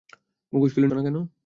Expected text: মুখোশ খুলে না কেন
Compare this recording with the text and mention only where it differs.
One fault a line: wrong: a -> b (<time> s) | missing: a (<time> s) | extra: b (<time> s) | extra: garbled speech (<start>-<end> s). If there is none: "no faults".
no faults